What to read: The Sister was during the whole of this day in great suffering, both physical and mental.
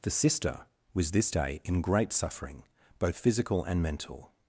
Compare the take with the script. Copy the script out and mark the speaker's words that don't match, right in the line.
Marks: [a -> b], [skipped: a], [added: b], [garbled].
The Sister was [skipped: during the whole of] this day in great suffering, both physical and mental.